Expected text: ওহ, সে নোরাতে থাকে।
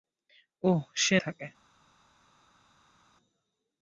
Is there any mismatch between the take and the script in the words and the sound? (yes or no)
yes